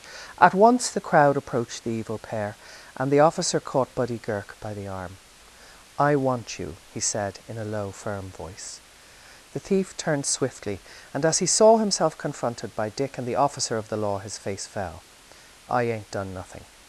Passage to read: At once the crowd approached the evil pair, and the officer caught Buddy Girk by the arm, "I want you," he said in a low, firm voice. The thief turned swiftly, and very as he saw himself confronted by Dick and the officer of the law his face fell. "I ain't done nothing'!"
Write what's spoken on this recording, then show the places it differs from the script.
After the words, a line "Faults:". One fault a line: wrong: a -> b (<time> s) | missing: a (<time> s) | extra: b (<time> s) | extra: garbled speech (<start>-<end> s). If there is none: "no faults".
At once the crowd approached the evil pair, and the officer caught Buddy Girk by the arm, "I want you," he said in a low, firm voice. The thief turned swiftly, and as he saw himself confronted by Dick and the officer of the law his face fell. "I ain't done nothing'!"
Faults:
missing: very (11.3 s)